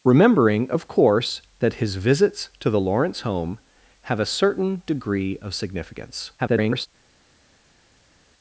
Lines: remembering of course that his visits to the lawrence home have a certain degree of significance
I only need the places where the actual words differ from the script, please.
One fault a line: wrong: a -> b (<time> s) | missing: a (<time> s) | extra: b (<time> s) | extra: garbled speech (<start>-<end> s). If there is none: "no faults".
extra: garbled speech (6.4-6.9 s)